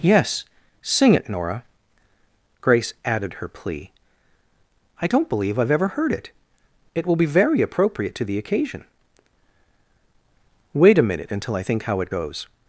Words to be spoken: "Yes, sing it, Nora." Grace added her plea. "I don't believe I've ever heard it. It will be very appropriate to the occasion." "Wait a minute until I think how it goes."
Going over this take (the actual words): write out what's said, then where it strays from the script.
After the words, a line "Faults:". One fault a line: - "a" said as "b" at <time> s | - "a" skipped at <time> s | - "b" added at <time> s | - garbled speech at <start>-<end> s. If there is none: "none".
"Yes, sing it, Nora." Grace added her plea. "I don't believe I've ever heard it. It will be very appropriate to the occasion." "Wait a minute until I think how it goes."
Faults:
none